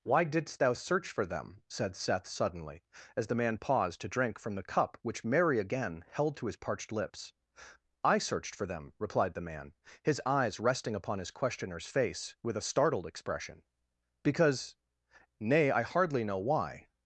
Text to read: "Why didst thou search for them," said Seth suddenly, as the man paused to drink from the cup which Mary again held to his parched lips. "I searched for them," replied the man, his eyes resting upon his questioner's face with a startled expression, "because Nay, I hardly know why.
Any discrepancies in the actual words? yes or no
no